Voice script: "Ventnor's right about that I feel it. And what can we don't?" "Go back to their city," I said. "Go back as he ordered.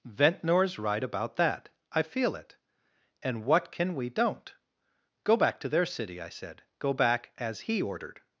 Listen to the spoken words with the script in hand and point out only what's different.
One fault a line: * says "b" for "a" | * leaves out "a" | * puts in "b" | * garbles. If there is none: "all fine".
all fine